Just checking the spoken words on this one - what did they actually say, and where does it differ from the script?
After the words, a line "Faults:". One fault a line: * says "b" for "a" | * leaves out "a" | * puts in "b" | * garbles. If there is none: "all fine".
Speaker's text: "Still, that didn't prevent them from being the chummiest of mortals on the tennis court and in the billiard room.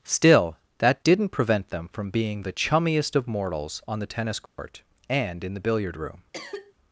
"Still, that didn't prevent them from being the chummiest of mortals on the tennis court and in the billiard room.
Faults:
all fine